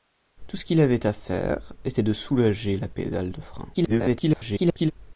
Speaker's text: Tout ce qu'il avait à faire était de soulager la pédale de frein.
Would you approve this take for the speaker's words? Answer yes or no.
no